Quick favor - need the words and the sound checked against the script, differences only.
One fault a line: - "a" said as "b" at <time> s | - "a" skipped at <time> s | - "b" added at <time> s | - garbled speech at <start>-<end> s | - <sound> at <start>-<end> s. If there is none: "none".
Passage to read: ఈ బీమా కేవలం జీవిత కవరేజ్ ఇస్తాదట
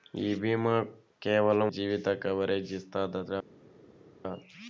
none